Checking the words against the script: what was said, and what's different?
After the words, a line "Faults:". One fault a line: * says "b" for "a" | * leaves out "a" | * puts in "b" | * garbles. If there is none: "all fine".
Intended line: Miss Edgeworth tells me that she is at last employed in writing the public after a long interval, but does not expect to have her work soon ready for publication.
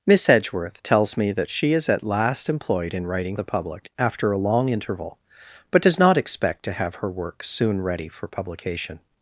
Miss Edgeworth tells me that she is at last employed in writing the public after a long interval, but does not expect to have her work soon ready for publication.
Faults:
all fine